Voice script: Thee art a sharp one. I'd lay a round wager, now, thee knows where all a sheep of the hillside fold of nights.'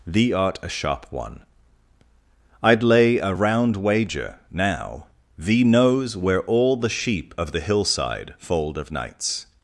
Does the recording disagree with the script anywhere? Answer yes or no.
yes